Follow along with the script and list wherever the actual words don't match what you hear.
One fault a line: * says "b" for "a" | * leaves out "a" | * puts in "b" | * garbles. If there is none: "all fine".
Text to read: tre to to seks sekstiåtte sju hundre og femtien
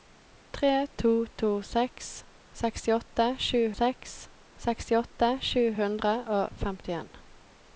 * puts in "seks sekstiåtte sju"